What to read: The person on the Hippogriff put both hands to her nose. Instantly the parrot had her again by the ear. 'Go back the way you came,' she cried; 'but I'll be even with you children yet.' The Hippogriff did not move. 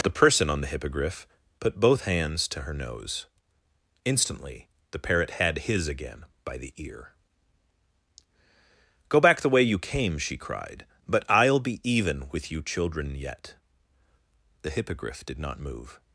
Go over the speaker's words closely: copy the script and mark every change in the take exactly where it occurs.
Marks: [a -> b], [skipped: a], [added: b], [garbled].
The person on the Hippogriff put both hands to her nose. Instantly the parrot had [her -> his] again by the ear. 'Go back the way you came,' she cried; 'but I'll be even with you children yet.' The Hippogriff did not move.